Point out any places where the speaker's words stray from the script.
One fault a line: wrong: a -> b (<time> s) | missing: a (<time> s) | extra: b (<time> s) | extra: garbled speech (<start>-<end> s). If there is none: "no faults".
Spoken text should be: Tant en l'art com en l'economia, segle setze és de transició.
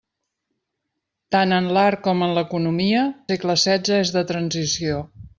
no faults